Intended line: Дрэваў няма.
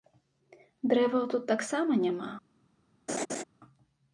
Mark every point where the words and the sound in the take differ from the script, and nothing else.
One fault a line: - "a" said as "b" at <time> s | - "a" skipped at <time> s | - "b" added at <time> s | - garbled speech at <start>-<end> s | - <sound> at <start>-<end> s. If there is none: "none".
- "тут таксама" added at 1.4 s
- laugh at 3.1-3.4 s